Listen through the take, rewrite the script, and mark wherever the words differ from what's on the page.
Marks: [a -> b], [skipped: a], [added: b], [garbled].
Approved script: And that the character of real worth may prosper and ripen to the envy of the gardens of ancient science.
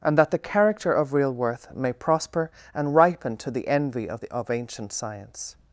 And that the character of real worth may prosper and ripen to the envy of the [skipped: gardens] of ancient science.